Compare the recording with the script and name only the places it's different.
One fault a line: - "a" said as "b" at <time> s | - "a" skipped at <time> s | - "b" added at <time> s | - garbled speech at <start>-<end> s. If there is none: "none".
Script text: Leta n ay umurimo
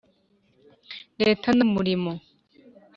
- "ay" skipped at 1.6 s